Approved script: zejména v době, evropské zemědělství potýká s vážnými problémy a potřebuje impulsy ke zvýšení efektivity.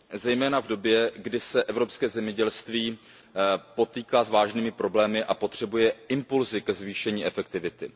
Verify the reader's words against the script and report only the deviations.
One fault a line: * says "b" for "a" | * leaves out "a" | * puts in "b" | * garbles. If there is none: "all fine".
* puts in "kdy se"